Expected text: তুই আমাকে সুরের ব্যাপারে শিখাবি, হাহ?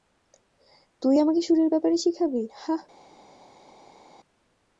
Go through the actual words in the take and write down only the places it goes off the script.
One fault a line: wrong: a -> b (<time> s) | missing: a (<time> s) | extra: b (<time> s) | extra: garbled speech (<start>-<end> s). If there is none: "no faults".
no faults